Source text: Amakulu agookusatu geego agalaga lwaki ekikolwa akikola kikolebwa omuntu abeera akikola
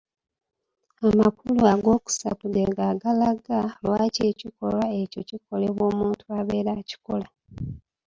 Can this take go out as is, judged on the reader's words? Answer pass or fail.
fail